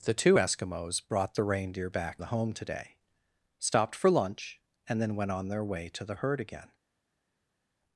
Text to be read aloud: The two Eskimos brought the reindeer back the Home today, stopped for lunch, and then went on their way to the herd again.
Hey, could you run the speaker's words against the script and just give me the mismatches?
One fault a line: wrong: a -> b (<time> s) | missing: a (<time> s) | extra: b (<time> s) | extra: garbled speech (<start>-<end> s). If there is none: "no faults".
no faults